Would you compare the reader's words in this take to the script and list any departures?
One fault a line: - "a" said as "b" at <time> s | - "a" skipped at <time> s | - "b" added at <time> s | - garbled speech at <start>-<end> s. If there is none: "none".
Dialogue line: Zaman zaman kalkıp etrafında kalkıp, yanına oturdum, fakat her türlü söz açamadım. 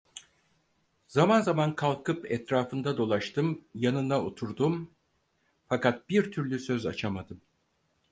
- "kalkıp" said as "dolaştım" at 3.0 s
- "her" said as "bir" at 6.1 s